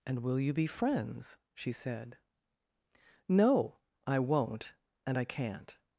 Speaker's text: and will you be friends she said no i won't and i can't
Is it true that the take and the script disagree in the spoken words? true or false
false